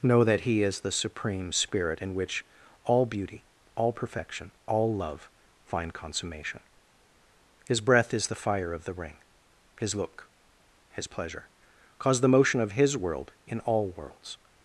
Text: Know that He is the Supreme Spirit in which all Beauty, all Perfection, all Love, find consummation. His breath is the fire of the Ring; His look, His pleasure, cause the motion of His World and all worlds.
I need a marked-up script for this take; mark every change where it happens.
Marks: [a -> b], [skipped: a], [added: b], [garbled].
Know that He is the Supreme Spirit in which all Beauty, all Perfection, all Love, find consummation. His breath is the fire of the Ring; His look, His pleasure, cause the motion of His World [and -> in] all worlds.